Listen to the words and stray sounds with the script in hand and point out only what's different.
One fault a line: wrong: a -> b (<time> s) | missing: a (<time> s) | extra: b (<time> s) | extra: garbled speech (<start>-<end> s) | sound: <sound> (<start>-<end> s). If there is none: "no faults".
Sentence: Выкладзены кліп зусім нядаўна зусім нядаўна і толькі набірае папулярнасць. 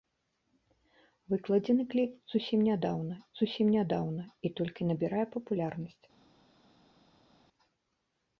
no faults